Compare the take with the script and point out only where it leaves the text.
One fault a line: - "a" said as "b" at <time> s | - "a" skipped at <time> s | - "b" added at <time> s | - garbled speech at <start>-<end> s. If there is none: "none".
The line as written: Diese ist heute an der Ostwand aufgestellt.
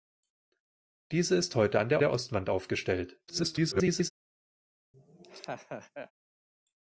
- "der" added at 2.0 s
- garbled speech at 3.3-4.1 s